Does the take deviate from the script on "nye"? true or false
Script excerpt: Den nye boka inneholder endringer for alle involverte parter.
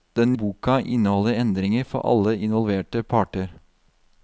true